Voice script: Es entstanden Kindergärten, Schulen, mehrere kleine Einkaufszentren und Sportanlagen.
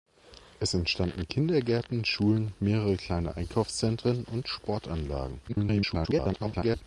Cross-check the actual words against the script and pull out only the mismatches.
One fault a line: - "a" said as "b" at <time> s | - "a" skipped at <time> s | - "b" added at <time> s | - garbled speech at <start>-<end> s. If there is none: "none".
- garbled speech at 5.5-6.8 s